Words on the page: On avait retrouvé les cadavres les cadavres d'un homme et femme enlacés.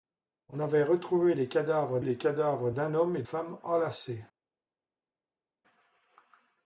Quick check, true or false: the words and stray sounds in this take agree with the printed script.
true